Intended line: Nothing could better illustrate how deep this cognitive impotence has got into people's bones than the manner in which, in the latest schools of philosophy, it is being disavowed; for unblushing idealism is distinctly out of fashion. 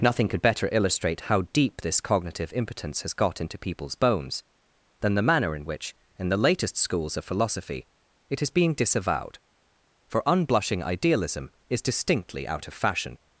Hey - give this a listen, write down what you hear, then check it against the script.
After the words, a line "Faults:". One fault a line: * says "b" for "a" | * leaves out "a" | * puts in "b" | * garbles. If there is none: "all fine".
Nothing could better illustrate how deep this cognitive impotence has got into people's bones than the manner in which, in the latest schools of philosophy, it is being disavowed; for unblushing idealism is distinctly out of fashion.
Faults:
all fine